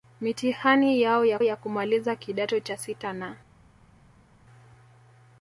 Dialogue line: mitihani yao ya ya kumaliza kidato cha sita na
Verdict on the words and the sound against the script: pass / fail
pass